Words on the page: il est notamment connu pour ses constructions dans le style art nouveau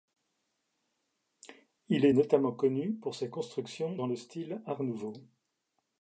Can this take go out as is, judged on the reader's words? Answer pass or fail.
pass